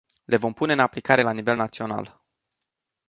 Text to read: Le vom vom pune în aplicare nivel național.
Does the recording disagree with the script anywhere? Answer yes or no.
yes